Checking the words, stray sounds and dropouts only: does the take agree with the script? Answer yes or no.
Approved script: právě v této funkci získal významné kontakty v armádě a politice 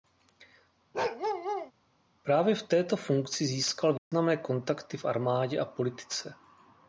no